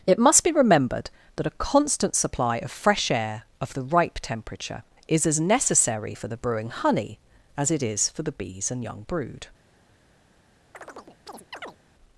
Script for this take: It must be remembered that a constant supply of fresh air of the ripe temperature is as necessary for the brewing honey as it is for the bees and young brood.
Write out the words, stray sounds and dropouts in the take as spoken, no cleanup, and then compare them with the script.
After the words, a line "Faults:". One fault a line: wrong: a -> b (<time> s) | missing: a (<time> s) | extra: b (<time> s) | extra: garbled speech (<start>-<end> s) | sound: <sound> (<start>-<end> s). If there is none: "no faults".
It must be remembered that a constant supply of fresh air of the ripe temperature is as necessary for the brewing honey as it is for the bees and young brood.
Faults:
sound: chirp (10.7-11.8 s)